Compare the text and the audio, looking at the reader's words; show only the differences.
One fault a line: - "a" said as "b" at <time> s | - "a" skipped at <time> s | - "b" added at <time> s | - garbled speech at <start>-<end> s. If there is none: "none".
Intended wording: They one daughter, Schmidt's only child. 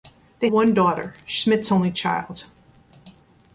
none